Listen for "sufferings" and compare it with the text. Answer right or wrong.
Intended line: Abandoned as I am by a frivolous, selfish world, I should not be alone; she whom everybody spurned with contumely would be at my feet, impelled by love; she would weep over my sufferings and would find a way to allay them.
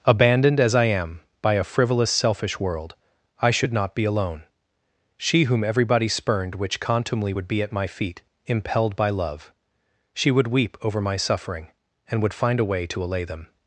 wrong